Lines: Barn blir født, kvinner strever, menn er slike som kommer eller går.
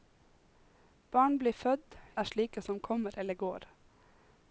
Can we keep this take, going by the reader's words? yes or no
no